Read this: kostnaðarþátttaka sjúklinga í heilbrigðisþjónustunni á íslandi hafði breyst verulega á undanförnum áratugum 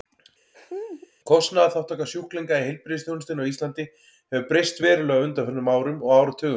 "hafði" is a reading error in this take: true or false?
true